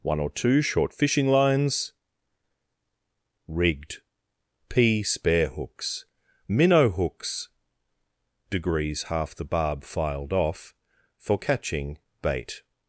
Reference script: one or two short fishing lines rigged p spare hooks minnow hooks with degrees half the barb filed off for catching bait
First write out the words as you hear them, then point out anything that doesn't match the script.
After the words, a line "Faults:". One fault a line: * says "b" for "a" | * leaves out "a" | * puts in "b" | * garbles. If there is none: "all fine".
one or two short fishing lines rigged p spare hooks minnow hooks degrees half the barb filed off for catching bait
Faults:
* leaves out "with"